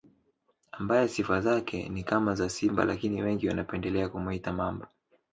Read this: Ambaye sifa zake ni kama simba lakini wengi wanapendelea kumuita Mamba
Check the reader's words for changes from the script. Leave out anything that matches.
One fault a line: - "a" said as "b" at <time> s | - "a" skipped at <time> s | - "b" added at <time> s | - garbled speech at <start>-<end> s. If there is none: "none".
- "za" added at 2.4 s